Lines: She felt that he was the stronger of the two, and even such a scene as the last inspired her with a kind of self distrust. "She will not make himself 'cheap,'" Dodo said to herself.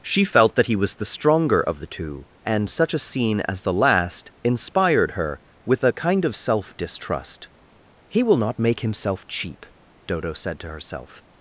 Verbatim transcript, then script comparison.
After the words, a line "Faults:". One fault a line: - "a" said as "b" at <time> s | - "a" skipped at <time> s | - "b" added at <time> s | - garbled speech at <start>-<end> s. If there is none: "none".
She felt that he was the stronger of the two, and such a scene as the last inspired her with a kind of self distrust. "He will not make himself 'cheap,'" Dodo said to herself.
Faults:
- "even" skipped at 2.7 s
- "She" said as "He" at 8.1 s